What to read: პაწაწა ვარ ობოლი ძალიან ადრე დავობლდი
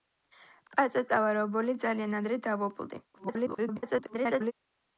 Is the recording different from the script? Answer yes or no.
yes